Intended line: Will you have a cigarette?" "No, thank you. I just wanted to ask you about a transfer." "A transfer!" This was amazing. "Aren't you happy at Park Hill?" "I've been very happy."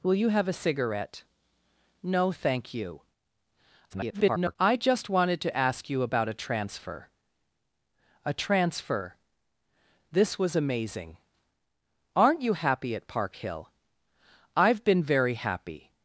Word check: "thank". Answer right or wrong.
right